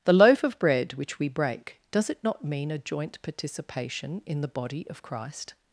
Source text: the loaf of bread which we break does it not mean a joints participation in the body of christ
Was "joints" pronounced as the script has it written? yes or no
no